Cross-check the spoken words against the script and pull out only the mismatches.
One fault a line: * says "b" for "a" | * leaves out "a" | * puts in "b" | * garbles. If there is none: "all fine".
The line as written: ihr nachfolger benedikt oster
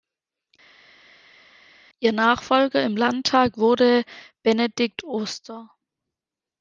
* puts in "im landtag wurde"